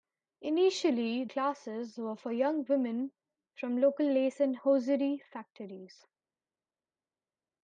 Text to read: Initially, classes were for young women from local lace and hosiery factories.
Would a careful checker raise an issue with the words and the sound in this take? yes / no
no